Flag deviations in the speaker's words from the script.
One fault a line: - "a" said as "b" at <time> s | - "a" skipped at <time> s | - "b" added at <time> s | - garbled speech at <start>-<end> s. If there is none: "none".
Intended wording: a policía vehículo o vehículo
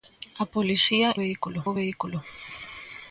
none